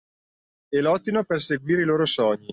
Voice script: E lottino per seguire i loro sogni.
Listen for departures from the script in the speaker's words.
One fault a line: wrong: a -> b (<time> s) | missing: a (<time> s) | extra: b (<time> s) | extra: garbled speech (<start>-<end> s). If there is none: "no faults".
no faults